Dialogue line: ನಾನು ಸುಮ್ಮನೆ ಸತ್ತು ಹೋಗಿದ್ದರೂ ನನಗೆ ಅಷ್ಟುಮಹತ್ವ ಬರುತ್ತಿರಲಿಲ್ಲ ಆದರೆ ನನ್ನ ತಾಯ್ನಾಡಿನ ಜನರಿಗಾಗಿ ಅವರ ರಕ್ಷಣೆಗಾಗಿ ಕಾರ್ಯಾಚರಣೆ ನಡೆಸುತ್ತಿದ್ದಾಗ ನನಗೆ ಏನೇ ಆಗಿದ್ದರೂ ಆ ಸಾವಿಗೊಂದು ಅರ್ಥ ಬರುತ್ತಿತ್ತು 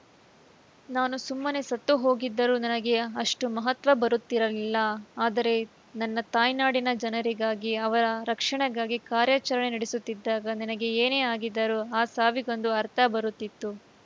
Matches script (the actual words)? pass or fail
pass